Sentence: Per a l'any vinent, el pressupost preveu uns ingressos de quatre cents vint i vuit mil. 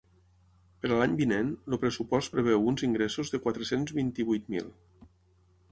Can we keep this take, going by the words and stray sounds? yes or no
yes